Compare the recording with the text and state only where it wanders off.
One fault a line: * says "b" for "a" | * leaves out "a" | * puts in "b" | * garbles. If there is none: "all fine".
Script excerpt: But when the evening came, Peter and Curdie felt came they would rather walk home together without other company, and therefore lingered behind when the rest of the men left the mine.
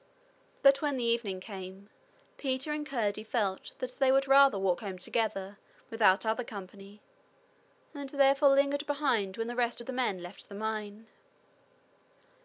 * says "that" for "came"